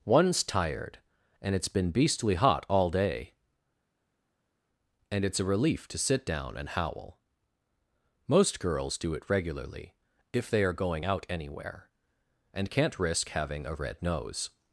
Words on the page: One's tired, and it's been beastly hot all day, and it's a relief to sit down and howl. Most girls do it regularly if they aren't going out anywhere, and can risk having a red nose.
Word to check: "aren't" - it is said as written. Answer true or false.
false